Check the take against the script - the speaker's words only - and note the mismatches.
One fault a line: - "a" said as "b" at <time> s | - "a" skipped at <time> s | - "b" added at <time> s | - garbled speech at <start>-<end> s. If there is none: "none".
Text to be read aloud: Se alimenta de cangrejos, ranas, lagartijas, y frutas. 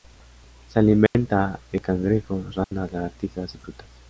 none